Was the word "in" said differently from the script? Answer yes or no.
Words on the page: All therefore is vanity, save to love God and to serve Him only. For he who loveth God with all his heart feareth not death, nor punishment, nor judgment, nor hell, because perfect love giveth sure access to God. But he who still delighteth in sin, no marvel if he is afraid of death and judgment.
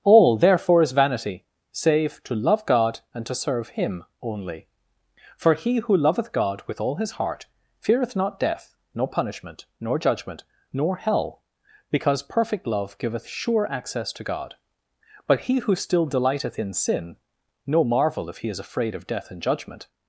no